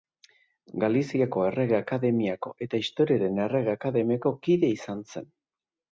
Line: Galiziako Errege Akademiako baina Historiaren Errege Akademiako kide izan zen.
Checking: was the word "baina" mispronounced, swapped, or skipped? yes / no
yes